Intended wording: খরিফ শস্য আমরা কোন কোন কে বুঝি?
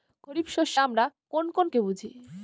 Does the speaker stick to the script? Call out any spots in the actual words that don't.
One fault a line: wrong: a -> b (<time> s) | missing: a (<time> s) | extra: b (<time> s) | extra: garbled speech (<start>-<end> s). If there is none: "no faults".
no faults